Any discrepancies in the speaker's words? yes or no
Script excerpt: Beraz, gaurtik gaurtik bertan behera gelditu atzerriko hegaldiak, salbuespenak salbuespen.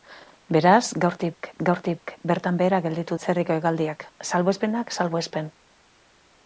no